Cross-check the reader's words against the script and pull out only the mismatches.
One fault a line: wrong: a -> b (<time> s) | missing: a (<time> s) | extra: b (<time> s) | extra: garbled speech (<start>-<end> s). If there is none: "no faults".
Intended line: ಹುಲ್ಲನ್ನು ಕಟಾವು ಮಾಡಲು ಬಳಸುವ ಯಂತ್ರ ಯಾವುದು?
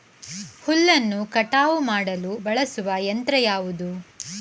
no faults